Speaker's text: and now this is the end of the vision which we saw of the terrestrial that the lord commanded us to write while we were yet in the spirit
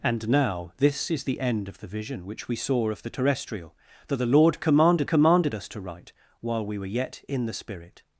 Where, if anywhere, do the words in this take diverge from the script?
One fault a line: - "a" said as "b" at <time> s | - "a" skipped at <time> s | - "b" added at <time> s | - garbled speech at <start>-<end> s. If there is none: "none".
- "commanded" added at 5.1 s